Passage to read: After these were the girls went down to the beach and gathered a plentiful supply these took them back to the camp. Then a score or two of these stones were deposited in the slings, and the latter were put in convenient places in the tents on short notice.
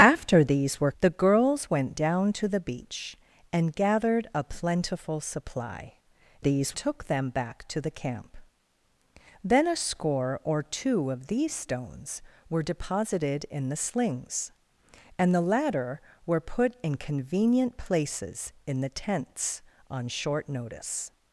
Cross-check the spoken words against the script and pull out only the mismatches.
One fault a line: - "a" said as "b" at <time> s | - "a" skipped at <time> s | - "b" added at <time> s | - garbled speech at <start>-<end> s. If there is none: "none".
none